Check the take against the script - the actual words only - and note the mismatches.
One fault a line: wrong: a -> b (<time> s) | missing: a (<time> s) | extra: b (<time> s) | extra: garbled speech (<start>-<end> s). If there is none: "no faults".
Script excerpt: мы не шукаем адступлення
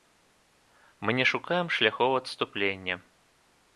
extra: шляхоў (1.8 s)